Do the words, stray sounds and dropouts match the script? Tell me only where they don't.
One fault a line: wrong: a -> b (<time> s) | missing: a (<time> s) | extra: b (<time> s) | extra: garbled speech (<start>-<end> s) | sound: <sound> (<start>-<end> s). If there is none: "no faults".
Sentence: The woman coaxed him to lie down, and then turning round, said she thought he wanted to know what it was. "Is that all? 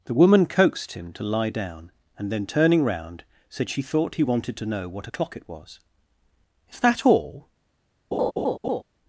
extra: o'clock (5.0 s)
sound: laugh (8.1-8.8 s)